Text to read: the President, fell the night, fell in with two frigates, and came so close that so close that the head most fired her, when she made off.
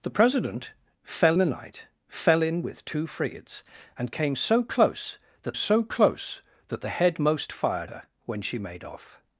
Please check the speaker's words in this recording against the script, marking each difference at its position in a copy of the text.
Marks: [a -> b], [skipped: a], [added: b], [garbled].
the President, fell the night, fell in with two frigates, and came so close that so close that the head most fired her, when she made off.